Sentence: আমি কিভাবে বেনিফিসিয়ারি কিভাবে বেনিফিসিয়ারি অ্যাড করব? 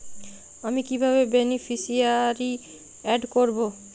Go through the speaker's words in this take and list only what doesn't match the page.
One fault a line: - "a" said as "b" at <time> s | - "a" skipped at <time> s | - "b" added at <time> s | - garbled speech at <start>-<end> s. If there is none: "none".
- "কিভাবে বেনিফিসিয়ারি" skipped at 2.5 s